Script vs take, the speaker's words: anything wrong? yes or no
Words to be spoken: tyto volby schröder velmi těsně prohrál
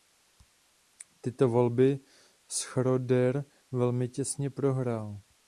no